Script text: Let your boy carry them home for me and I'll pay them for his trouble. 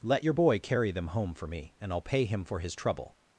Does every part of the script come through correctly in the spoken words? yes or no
no